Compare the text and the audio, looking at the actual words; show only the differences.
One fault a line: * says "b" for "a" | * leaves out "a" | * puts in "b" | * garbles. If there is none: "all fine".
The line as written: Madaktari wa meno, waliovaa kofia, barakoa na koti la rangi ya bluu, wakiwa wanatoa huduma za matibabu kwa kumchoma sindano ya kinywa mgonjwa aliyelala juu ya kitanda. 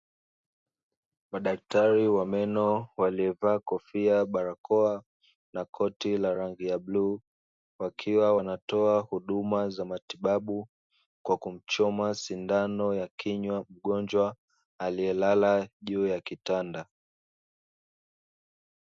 all fine